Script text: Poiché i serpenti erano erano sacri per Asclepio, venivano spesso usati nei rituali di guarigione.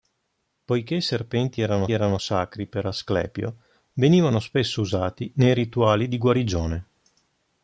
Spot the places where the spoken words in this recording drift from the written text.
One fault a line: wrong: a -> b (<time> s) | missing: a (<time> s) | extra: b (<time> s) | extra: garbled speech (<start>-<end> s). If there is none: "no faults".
no faults